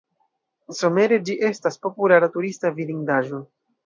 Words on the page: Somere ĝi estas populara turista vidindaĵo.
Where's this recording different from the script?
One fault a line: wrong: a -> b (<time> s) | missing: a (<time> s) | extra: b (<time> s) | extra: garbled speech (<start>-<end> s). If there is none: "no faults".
no faults